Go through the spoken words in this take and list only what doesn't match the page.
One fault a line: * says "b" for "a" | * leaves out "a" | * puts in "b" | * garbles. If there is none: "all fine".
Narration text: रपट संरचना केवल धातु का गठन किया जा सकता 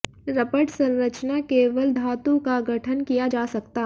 all fine